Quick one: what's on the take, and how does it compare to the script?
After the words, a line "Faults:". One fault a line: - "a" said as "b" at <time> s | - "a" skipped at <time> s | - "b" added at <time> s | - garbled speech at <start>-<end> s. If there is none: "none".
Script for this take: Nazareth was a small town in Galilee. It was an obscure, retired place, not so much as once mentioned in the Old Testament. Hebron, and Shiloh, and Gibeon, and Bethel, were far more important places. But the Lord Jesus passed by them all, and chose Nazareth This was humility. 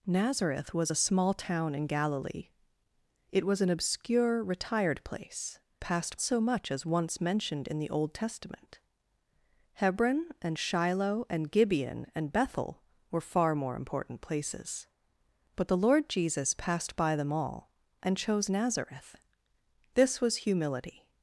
Nazareth was a small town in Galilee. It was an obscure, retired place, passed so much as once mentioned in the Old Testament. Hebron, and Shiloh, and Gibeon, and Bethel, were far more important places. But the Lord Jesus passed by them all, and chose Nazareth This was humility.
Faults:
- "not" said as "passed" at 5.8 s